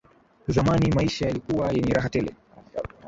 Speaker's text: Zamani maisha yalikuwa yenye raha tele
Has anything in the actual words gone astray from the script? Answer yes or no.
no